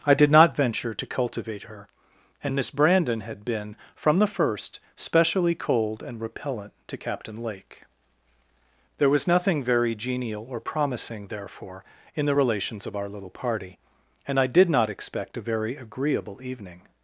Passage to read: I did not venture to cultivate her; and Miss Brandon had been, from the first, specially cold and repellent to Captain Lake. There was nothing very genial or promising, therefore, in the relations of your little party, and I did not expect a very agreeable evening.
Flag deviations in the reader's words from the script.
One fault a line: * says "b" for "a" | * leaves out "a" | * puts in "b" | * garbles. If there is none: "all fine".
* says "our" for "your"